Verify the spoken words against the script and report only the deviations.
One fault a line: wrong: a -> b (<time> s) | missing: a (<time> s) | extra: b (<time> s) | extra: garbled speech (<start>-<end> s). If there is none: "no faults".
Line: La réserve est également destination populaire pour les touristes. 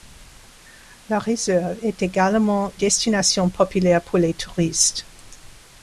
no faults